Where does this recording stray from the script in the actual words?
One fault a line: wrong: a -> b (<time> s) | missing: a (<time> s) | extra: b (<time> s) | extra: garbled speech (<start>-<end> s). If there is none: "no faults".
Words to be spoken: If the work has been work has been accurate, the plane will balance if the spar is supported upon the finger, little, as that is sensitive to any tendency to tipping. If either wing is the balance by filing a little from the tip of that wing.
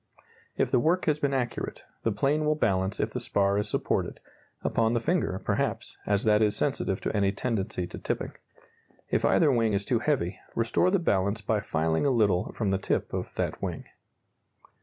missing: work has been (1.3 s)
wrong: little -> perhaps (5.5 s)
extra: too heavy restore (9.8 s)